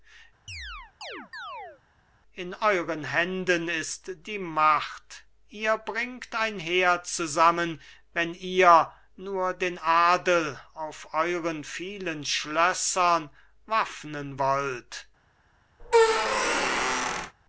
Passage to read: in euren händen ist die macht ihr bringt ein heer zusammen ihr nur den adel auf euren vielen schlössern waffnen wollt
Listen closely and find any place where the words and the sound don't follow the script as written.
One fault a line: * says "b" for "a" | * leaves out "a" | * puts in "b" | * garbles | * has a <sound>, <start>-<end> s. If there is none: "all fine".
* has a chirp, 0.5-1.8 s
* puts in "wenn"
* has a squeak, 15.8-17.3 s